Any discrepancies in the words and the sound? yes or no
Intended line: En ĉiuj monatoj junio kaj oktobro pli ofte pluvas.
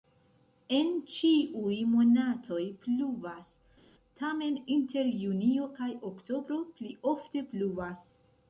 yes